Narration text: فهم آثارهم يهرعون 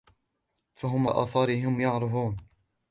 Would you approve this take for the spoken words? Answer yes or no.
yes